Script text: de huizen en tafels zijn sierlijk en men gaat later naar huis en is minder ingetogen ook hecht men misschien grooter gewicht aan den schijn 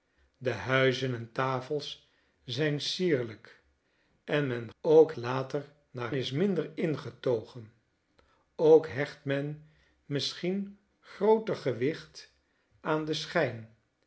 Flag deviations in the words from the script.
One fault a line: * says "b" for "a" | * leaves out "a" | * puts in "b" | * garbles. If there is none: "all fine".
* says "ook" for "gaat"
* leaves out "huis en"